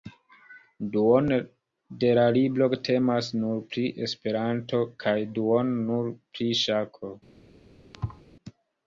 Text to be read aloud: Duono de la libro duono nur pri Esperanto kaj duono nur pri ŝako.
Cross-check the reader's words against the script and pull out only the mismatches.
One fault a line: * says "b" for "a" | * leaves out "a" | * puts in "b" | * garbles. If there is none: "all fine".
* says "temas" for "duono"